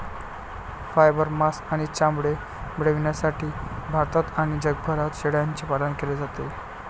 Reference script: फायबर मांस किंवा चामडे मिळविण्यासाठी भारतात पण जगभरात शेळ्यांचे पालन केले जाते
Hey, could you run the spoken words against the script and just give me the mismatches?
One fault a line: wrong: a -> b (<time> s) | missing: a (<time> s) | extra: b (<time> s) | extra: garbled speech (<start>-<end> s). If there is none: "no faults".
wrong: किंवा -> आणि (1.7 s)
wrong: पण -> आणि (4.4 s)